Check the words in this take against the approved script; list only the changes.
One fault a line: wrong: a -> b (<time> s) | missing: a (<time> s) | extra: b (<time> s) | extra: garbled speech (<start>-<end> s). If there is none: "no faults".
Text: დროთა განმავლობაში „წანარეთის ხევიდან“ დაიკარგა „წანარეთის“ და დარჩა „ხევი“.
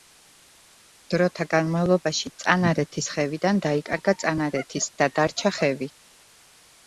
no faults